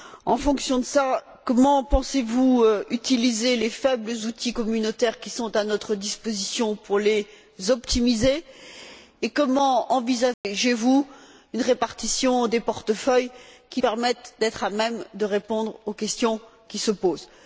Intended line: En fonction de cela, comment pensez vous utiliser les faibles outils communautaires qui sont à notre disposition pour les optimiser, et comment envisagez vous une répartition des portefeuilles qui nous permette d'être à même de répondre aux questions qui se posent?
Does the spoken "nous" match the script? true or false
false